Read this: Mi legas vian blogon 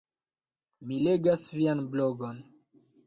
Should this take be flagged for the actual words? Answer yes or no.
no